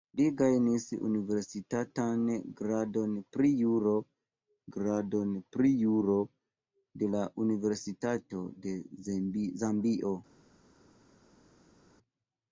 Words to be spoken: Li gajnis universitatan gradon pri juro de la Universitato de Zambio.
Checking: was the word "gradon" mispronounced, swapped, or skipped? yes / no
no